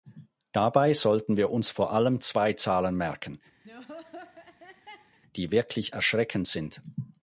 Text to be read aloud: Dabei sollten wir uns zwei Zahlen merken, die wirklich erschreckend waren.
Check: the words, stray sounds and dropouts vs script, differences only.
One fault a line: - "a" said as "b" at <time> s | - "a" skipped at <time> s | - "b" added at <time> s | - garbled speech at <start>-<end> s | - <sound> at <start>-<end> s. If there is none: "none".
- "vor allem" added at 1.7 s
- laugh at 3.6-5.2 s
- "waren" said as "sind" at 6.4 s